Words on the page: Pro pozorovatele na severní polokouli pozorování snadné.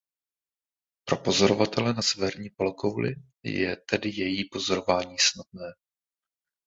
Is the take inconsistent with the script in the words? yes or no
yes